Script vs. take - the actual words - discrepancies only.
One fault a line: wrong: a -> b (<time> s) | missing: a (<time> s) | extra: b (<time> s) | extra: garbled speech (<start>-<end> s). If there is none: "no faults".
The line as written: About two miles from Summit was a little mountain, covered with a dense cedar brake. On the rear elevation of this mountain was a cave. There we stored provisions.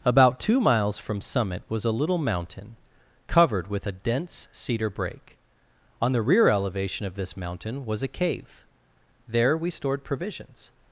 no faults